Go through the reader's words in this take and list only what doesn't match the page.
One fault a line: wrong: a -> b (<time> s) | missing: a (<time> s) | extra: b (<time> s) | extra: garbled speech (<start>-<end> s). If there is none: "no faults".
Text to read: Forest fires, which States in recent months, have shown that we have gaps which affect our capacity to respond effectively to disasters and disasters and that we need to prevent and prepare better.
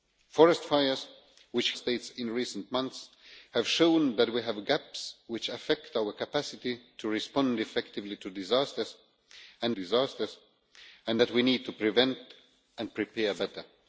no faults